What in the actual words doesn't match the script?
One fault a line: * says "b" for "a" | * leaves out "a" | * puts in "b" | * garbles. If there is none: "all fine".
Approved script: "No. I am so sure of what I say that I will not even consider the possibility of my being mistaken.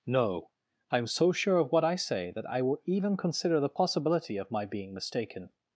* leaves out "not"